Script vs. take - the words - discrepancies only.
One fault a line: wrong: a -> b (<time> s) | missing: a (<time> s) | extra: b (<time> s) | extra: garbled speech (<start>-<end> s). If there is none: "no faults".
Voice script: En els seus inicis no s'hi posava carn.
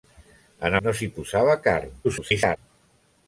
missing: els seus inicis (0.8 s)
extra: garbled speech (2.0-2.6 s)